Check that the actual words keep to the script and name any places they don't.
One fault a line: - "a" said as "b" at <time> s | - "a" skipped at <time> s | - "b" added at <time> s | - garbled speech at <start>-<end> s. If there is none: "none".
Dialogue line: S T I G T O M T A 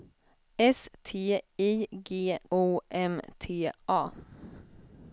- "T" skipped at 2.4 s